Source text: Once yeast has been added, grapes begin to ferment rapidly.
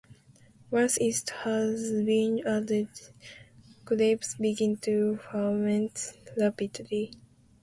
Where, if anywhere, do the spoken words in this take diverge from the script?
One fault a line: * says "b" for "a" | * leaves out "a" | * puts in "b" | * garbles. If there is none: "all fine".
all fine